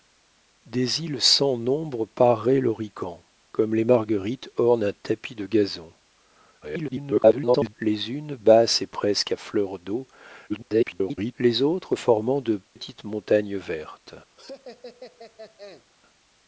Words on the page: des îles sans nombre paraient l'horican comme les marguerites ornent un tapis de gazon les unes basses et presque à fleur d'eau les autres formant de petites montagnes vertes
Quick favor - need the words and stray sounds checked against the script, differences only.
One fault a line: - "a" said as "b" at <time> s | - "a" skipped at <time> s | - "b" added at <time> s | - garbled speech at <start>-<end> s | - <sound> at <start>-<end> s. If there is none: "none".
- garbled speech at 6.6-7.7 s
- garbled speech at 10.5-11.3 s
- dropout at 12.7-12.8 s
- laugh at 14.4-15.9 s